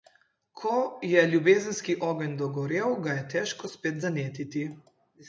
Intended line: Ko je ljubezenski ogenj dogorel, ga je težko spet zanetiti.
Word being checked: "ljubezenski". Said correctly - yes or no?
yes